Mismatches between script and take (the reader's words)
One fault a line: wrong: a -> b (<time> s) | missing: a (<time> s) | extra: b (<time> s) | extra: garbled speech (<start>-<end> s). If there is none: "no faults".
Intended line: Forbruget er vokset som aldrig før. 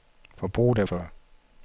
missing: vokset som aldrig (0.8 s)